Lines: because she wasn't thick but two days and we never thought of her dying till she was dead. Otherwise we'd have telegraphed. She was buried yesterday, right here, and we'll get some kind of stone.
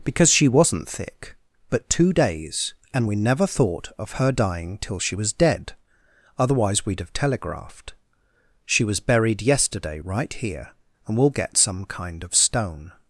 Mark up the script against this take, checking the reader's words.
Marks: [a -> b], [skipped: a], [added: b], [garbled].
because she wasn't thick but two days and we never thought of her dying till she was dead. Otherwise we'd have telegraphed. She was buried yesterday, right here, and we'll get some kind of stone.